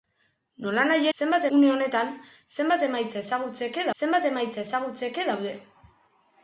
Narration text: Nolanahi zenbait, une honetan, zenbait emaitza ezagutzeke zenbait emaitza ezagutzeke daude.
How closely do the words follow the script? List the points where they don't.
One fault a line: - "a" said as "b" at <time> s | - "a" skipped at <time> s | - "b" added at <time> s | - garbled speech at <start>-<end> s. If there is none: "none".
none